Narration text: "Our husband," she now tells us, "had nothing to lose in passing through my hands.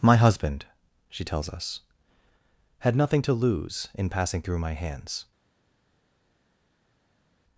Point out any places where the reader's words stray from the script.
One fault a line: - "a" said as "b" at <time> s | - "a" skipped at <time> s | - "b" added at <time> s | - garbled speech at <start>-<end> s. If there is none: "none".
- "Our" said as "My" at 0.0 s
- "now" skipped at 1.2 s